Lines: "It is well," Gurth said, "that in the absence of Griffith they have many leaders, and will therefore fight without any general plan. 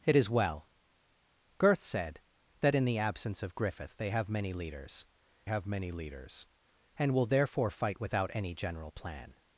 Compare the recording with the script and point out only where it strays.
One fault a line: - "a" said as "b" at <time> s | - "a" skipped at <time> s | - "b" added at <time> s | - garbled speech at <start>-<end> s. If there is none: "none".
- "have many leaders" added at 5.5 s